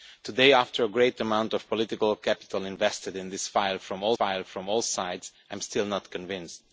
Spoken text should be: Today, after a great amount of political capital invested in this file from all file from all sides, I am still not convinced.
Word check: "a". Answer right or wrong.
right